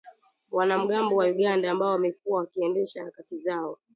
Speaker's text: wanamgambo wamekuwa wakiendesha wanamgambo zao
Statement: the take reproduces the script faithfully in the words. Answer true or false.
false